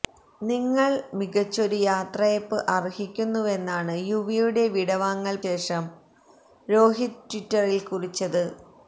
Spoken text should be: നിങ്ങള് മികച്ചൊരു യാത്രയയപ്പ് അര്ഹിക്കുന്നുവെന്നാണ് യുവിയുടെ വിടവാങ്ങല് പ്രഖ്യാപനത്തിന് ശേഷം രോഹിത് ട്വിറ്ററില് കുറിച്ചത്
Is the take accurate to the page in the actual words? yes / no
no